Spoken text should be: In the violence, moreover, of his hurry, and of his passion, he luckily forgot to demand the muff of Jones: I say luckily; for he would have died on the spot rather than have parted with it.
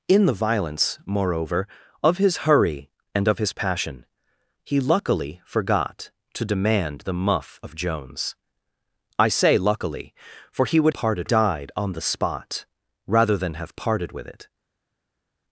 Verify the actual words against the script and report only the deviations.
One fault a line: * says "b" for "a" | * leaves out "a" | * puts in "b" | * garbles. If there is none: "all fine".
* says "parted" for "have"